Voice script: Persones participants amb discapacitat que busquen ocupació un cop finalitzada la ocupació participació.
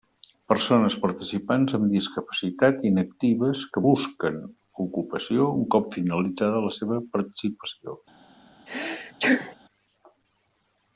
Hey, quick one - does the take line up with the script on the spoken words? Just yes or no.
no